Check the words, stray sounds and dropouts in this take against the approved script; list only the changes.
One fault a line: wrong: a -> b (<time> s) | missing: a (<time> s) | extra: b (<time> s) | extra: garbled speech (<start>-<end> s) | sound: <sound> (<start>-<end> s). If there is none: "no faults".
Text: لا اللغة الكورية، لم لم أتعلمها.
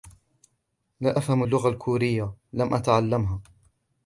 extra: أفهم (1.2 s)
missing: لم (2.7 s)